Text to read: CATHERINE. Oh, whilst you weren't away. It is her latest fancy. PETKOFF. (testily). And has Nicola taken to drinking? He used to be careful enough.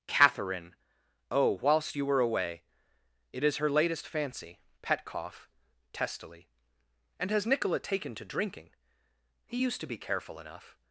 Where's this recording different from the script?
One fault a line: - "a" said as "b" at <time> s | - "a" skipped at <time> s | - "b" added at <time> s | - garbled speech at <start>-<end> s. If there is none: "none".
- "weren't" said as "were" at 2.0 s